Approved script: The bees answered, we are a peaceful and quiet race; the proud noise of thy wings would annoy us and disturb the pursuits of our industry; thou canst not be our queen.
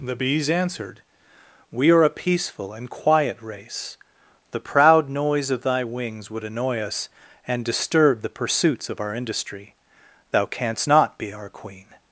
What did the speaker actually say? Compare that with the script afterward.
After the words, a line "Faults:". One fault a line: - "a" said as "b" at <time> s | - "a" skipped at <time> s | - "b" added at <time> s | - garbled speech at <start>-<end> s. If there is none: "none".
The bees answered, we are a peaceful and quiet race; the proud noise of thy wings would annoy us and disturb the pursuits of our industry; thou canst not be our queen.
Faults:
none